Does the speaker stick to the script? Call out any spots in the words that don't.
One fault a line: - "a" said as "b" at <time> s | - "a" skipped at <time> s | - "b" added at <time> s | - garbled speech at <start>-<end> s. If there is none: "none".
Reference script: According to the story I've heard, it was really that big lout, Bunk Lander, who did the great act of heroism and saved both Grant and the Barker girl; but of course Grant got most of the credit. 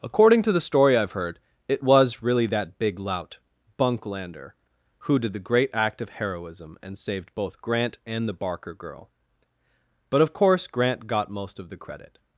none